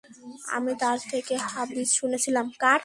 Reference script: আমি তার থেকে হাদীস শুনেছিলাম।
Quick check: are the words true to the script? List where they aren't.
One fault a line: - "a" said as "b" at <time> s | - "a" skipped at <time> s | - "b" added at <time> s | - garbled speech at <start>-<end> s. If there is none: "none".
none